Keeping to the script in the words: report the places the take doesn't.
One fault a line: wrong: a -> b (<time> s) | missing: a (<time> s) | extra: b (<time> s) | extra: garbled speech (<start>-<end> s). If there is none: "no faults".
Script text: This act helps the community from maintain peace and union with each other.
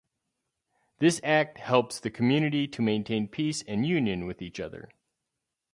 wrong: from -> to (2.7 s)